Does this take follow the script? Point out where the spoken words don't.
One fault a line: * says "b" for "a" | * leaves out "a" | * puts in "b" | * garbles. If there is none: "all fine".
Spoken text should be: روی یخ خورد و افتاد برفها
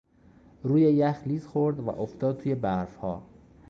* puts in "لیز"
* puts in "توی"